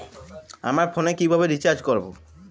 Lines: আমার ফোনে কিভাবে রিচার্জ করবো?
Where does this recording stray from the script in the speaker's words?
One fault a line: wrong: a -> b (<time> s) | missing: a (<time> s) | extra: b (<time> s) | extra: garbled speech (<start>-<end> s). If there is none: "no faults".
no faults